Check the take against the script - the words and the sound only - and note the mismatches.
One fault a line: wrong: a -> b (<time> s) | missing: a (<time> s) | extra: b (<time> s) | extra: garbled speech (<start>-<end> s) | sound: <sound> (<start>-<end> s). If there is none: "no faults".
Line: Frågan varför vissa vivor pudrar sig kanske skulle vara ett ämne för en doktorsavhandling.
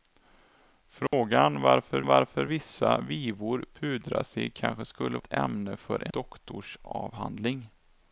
sound: dropout (1.1-1.1 s)
extra: varför (2.1 s)
missing: vara (5.2 s)
missing: en (6.1 s)